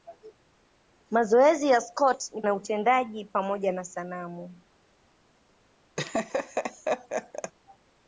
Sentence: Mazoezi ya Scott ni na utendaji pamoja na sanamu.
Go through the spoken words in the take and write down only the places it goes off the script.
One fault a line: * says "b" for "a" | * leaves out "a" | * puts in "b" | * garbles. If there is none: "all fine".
all fine